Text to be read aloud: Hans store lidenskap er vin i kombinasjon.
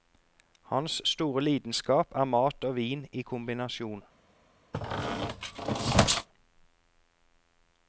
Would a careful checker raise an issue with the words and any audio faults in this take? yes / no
yes